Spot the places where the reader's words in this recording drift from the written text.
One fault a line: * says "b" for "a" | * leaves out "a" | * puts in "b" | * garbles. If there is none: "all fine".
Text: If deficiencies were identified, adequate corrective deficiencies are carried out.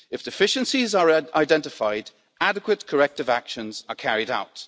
* says "are" for "were"
* says "actions" for "deficiencies"